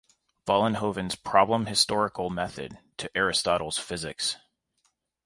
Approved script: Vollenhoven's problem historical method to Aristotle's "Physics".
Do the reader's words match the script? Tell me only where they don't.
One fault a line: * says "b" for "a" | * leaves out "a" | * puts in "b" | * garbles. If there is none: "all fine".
all fine